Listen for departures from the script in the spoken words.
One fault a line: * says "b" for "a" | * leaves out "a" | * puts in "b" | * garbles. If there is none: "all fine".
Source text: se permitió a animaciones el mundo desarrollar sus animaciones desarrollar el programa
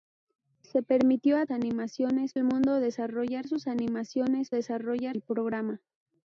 all fine